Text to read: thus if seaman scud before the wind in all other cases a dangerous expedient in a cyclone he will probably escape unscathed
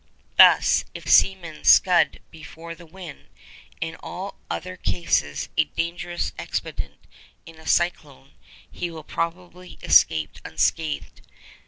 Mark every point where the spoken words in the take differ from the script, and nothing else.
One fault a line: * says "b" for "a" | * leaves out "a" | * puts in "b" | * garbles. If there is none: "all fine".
all fine